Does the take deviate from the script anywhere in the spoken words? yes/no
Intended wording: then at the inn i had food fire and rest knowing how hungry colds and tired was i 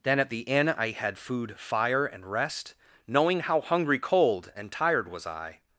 yes